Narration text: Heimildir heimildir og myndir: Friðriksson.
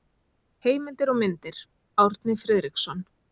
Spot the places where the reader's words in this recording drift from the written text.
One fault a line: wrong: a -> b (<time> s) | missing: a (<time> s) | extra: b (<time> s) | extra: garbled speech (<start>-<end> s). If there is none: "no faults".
missing: heimildir (1.1 s)
extra: Árni (2.1 s)